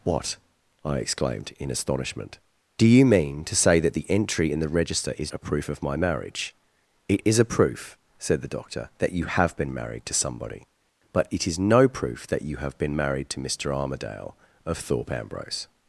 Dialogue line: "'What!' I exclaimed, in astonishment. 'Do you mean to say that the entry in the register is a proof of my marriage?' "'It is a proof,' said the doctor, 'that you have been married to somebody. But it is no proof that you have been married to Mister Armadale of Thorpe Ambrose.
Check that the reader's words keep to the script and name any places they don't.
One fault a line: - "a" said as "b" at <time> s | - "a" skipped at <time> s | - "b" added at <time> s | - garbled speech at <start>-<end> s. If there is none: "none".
none